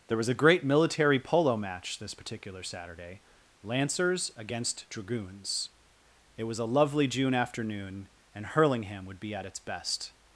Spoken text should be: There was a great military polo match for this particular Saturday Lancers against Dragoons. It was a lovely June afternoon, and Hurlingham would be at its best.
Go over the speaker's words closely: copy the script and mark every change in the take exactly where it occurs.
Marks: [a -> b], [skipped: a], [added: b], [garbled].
There was a great military polo match [skipped: for] this particular Saturday Lancers against Dragoons. It was a lovely June afternoon, and Hurlingham would be at its best.